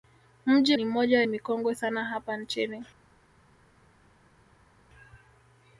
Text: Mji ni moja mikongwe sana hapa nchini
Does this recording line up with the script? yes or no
yes